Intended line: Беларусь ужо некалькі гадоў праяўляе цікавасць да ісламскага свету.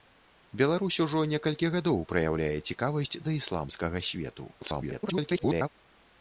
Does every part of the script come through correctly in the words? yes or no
no